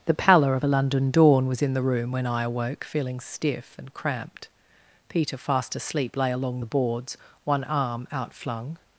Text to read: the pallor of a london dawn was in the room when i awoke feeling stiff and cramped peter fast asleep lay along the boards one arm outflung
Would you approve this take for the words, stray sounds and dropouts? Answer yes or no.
yes